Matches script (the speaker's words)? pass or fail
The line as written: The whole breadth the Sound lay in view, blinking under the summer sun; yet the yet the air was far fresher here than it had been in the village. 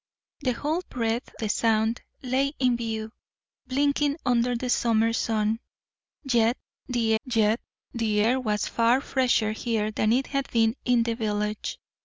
pass